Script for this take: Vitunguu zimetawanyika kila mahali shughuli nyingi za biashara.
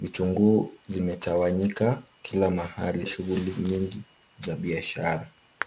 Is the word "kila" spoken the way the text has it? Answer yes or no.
yes